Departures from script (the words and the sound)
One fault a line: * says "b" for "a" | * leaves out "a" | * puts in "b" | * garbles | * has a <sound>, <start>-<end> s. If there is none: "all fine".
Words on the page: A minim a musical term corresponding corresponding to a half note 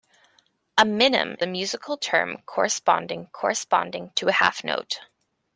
all fine